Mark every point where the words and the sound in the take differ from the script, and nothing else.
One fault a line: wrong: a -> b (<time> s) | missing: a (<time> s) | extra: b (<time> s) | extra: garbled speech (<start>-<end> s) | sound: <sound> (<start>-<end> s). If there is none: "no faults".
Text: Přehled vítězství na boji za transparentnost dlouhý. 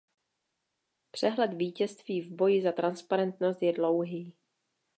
wrong: na -> v (2.2 s)
extra: je (3.6 s)